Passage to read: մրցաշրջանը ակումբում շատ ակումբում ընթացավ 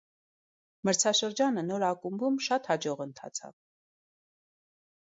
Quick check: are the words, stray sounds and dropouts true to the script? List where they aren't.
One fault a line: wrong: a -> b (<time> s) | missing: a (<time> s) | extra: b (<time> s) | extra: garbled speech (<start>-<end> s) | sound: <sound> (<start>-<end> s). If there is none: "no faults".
extra: նոր (1.7 s)
wrong: ակումբում -> հաջող (2.7 s)